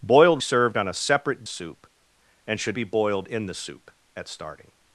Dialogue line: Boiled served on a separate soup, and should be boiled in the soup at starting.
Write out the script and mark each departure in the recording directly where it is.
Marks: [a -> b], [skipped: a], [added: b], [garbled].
Boiled served on a separate soup, and should be boiled in the soup at starting.